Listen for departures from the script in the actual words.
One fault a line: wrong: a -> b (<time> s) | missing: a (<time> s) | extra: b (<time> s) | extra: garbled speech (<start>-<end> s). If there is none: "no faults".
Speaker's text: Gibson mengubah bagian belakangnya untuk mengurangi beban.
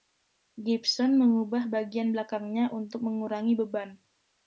no faults